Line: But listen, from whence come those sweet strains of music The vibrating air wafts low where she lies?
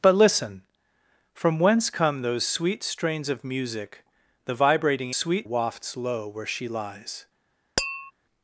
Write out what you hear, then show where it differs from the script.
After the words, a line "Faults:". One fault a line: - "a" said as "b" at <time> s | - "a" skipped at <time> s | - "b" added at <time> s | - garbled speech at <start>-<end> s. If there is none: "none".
But listen, from whence come those sweet strains of music The vibrating sweet wafts low where she lies?
Faults:
- "air" said as "sweet" at 5.1 s